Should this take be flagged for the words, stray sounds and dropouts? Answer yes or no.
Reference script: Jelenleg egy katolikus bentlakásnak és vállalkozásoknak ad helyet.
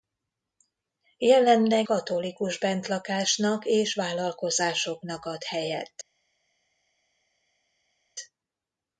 yes